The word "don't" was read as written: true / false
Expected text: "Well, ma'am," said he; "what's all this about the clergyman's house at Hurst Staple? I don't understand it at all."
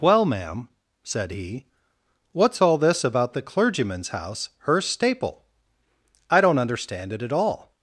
true